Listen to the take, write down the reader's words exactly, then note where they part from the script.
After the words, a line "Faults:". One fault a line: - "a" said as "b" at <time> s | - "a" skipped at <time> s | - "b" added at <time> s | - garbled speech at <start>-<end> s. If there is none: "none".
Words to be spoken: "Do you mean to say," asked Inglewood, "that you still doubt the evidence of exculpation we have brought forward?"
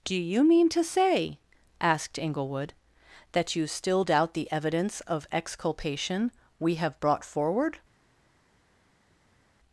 "Do you mean to say," asked Inglewood, "that you still doubt the evidence of exculpation we have brought forward?"
Faults:
none